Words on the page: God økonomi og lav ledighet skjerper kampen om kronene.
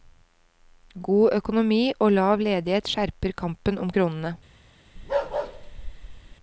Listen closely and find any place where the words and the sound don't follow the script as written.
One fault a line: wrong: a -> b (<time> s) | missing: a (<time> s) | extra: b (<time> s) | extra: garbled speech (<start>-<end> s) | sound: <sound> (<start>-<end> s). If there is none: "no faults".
sound: bark (5.0-6.4 s)